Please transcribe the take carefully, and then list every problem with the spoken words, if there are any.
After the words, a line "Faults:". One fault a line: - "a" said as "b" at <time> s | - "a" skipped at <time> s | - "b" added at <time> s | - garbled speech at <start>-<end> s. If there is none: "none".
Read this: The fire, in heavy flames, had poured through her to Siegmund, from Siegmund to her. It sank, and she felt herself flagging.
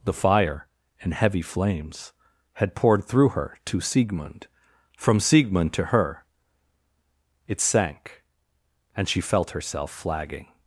The fire, in heavy flames, had poured through her to Siegmund, from Siegmund to her. It sank, and she felt herself flagging.
Faults:
none